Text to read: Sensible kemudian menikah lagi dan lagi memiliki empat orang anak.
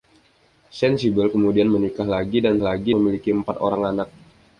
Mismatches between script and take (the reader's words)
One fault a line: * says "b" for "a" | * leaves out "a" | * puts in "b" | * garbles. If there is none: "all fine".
all fine